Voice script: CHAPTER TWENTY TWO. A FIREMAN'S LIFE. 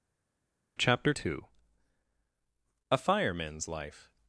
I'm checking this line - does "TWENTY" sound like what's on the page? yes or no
no